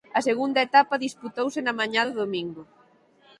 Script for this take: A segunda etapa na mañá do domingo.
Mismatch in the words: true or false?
true